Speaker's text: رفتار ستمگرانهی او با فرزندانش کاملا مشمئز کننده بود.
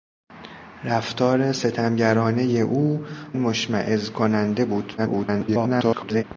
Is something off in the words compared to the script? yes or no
yes